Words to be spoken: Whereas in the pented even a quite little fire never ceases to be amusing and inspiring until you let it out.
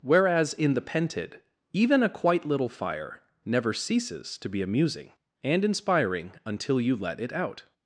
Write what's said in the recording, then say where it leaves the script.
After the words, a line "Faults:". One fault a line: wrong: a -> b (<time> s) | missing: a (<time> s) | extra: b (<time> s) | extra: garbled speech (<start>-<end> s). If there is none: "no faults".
Whereas in the pented even a quite little fire never ceases to be amusing and inspiring until you let it out.
Faults:
no faults